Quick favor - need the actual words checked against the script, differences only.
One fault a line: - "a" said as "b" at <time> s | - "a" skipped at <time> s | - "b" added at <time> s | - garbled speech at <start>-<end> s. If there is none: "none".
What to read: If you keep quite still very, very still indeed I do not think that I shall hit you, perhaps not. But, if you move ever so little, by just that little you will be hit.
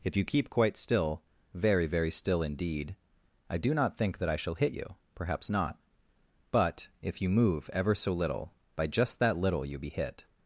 - "will" skipped at 9.8 s